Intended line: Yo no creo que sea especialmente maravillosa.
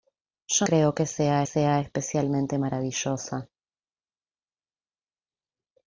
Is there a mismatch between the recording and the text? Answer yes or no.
yes